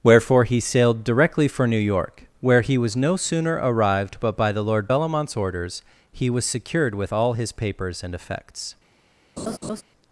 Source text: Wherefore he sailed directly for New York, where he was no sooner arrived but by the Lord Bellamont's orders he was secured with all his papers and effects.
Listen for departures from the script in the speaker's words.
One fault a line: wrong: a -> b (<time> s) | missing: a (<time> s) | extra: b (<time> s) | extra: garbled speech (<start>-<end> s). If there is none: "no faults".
no faults